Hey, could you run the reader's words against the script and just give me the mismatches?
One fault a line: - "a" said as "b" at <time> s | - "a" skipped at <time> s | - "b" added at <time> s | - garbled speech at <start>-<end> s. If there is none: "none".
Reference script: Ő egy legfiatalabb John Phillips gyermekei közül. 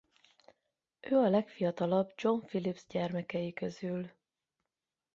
- "egy" said as "a" at 1.1 s